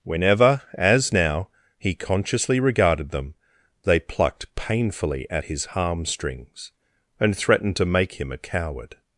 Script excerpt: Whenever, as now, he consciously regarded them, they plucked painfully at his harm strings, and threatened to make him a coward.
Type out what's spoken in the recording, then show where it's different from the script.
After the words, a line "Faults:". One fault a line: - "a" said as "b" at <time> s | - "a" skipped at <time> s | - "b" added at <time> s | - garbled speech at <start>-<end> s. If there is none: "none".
Whenever, as now, he consciously regarded them, they plucked painfully at his harm strings, and threatened to make him a coward.
Faults:
none